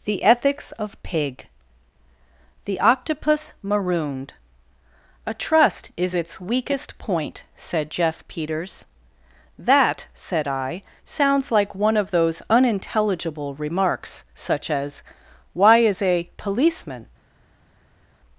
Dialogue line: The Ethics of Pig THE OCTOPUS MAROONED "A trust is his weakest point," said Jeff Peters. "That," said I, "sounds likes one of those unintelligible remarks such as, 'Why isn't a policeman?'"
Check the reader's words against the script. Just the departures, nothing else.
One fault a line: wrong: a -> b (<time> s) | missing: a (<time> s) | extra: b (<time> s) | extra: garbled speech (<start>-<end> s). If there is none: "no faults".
wrong: his -> its (6.1 s)
wrong: likes -> like (11.5 s)
wrong: isn't -> is (15.8 s)